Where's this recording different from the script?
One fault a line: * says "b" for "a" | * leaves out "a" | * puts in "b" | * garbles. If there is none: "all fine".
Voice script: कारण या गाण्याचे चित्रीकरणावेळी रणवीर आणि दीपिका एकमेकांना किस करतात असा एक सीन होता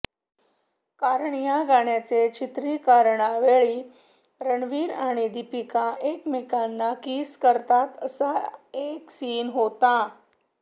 all fine